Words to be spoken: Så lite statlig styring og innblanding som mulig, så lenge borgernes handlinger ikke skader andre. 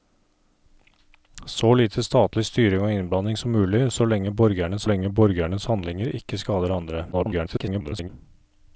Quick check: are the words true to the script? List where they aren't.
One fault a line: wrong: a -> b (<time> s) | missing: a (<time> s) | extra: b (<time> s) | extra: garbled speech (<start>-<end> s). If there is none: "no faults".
extra: lenge borgernes (4.8 s)
extra: garbled speech (7.1-8.1 s)